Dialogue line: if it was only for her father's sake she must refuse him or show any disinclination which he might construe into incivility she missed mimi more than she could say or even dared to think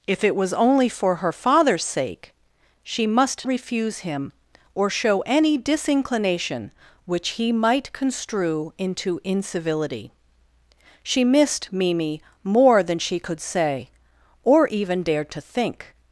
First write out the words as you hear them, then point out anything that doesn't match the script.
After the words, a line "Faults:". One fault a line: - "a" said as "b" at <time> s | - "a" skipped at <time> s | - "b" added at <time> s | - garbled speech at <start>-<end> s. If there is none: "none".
if it was only for her father's sake she must refuse him or show any disinclination which he might construe into incivility she missed mimi more than she could say or even dared to think
Faults:
none